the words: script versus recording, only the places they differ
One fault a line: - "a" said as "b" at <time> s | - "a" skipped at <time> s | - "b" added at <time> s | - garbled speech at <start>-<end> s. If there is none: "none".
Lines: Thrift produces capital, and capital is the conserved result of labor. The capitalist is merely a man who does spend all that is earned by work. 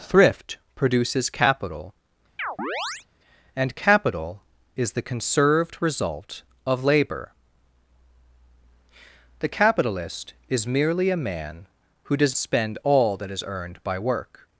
none